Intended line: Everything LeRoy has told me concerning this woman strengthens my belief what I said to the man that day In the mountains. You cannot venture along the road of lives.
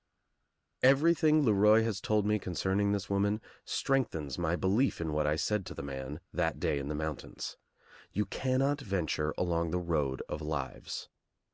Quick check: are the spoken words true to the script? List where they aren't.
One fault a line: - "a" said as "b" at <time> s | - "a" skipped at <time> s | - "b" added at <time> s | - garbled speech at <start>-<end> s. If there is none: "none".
- "in" added at 5.0 s